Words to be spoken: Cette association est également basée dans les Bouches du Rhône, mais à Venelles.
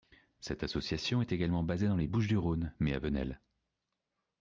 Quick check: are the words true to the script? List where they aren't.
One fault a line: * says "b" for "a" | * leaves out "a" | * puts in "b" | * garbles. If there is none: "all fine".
all fine